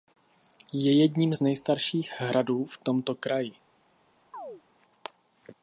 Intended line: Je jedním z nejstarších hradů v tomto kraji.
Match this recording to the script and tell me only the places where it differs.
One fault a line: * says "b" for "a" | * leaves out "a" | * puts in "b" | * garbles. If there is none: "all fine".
all fine